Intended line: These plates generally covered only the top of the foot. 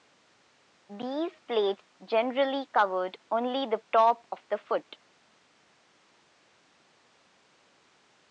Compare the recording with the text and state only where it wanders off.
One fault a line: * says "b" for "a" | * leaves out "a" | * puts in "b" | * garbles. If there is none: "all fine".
all fine